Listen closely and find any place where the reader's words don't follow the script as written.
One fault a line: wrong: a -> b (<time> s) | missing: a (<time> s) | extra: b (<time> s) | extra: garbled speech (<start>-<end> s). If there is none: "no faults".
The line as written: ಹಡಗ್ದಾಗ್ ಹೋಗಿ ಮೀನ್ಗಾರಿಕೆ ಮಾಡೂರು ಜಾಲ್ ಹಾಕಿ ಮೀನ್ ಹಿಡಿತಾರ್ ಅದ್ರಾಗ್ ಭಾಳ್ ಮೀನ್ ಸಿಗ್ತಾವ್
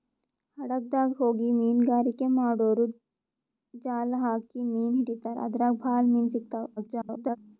extra: garbled speech (6.8-7.4 s)